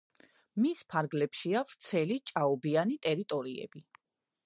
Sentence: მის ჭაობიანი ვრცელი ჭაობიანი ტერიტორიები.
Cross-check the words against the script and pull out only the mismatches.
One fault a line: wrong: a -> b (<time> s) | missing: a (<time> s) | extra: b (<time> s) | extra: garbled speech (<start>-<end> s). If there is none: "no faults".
wrong: ჭაობიანი -> ფარგლებშია (0.9 s)